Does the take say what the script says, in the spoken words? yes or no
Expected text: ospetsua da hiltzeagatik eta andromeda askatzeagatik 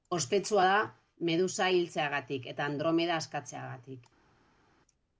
no